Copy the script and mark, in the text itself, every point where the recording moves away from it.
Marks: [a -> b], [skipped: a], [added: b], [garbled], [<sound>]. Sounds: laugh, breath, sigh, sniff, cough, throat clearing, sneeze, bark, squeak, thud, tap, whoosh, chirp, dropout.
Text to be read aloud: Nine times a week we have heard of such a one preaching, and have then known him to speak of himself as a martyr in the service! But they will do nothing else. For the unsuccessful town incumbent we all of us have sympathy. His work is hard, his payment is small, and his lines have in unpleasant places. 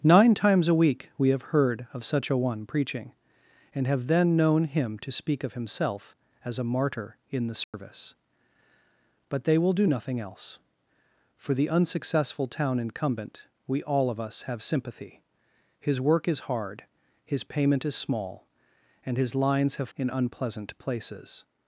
Nine times a week we have heard of such a one preaching, and have then known him to speak of himself as a martyr in the service! [dropout] But they will do nothing else. For the unsuccessful town incumbent we all of us have sympathy. His work is hard, his payment is small, and his lines have in unpleasant places.